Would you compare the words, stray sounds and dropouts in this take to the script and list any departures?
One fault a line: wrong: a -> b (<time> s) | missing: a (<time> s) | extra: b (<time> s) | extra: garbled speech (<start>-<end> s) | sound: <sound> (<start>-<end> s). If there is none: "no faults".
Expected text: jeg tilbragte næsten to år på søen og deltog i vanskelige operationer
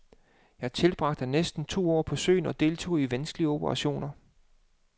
no faults